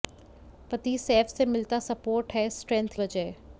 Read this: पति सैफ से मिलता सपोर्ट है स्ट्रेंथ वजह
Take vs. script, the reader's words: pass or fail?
pass